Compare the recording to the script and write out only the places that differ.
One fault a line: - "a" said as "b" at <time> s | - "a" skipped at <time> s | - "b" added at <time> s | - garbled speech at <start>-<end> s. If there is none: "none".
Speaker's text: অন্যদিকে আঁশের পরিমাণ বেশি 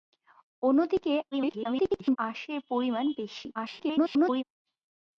- garbled speech at 1.3-2.2 s
- garbled speech at 3.5-4.4 s